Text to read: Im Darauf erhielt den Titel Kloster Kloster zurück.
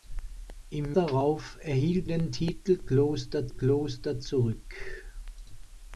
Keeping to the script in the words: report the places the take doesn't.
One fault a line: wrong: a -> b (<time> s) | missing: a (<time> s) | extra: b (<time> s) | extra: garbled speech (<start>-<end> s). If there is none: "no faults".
no faults